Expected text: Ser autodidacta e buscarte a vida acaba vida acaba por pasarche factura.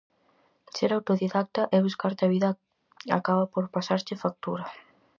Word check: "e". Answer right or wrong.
right